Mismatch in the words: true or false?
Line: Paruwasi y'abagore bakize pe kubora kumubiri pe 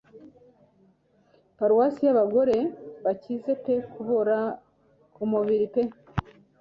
false